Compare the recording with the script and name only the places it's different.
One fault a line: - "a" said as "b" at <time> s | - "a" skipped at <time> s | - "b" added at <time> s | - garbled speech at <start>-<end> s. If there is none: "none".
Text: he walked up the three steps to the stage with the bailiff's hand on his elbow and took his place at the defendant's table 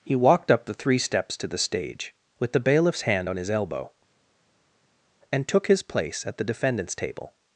none